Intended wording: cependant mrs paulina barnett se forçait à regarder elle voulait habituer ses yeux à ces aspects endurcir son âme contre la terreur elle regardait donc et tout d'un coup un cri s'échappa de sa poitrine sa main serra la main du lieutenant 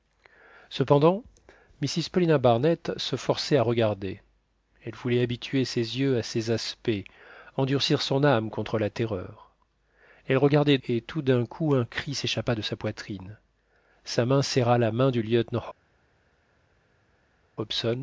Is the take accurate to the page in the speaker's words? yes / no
no